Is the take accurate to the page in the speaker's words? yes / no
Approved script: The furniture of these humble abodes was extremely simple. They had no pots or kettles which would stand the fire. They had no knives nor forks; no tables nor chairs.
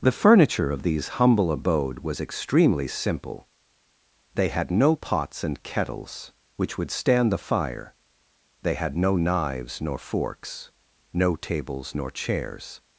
no